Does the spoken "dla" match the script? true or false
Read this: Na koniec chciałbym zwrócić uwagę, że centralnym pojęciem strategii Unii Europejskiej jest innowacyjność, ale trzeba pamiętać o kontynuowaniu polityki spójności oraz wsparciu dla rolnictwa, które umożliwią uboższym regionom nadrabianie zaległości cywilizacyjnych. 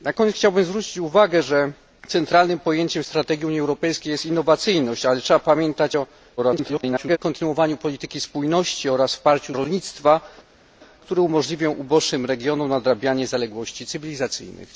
false